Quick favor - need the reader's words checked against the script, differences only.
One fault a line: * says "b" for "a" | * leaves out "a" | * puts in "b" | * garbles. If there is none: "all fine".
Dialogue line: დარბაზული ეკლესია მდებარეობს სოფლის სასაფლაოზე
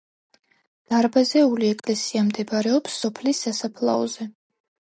all fine